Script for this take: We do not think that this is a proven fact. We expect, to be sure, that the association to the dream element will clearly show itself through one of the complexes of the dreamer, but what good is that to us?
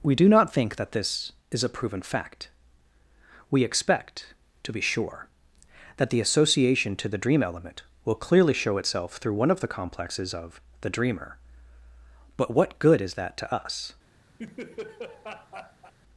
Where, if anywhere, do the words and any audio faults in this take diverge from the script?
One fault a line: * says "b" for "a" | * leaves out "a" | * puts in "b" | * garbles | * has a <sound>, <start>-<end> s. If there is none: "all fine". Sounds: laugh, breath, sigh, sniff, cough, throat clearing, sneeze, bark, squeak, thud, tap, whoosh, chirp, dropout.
* has a laugh, 14.4-15.9 s